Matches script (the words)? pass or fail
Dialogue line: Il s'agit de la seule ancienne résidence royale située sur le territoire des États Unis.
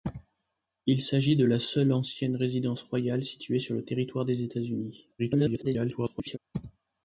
fail